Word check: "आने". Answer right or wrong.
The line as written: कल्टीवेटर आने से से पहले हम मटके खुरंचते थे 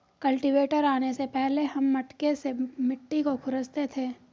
right